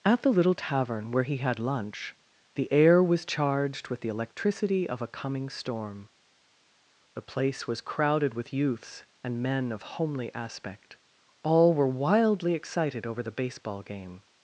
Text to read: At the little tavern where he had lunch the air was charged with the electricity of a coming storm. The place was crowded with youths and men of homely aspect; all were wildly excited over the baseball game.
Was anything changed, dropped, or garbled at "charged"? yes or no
no